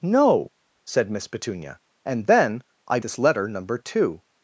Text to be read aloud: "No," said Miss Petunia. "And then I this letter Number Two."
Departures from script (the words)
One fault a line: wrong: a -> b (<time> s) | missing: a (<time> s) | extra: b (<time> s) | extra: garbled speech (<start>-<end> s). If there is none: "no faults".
no faults